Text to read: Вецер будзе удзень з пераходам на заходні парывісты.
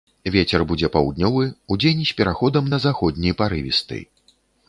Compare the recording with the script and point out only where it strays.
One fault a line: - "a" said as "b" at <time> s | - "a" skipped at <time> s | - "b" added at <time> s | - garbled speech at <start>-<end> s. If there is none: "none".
- "паўднёвы" added at 0.9 s